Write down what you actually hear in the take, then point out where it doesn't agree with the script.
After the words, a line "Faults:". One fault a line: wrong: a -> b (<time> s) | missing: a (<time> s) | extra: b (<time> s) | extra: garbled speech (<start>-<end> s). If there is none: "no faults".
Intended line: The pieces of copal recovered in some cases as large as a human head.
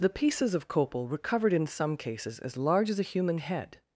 The pieces of copal recovered in some cases as large as a human head.
Faults:
no faults